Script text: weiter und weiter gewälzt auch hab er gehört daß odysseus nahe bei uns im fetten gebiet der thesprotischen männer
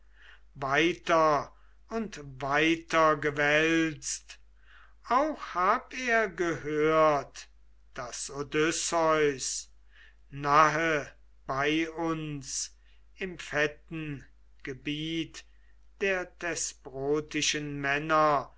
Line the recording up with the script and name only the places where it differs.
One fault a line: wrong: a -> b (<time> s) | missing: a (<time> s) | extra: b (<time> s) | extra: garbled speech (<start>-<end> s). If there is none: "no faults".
no faults